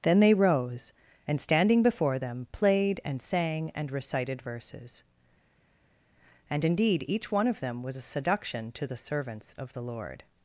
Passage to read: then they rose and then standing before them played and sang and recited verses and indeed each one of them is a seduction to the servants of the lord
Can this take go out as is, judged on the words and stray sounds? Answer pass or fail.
fail